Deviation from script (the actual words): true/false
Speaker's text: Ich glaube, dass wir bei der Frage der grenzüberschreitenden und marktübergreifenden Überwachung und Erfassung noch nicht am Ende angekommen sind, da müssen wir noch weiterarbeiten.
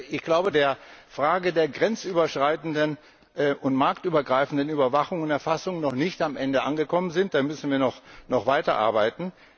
true